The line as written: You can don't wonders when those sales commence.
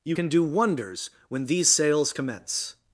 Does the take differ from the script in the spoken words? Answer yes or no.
yes